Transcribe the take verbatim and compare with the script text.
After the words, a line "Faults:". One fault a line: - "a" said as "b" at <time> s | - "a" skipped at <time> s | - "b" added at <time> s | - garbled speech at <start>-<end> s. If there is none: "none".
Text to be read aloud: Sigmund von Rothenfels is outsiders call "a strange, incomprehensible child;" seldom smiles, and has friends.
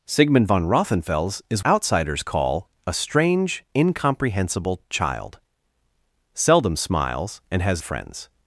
Sigmund von Rothenfels is outsiders call "a strange, incomprehensible child;" seldom smiles, and has friends.
Faults:
none